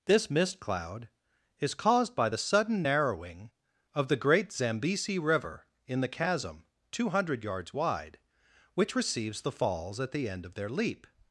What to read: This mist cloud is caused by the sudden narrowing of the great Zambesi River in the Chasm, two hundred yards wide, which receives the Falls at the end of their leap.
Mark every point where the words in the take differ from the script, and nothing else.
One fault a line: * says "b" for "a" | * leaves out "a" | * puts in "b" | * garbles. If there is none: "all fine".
all fine